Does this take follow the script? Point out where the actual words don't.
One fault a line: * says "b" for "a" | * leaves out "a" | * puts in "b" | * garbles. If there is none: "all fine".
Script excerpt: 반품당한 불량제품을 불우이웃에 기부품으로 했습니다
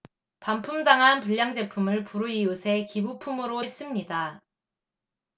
all fine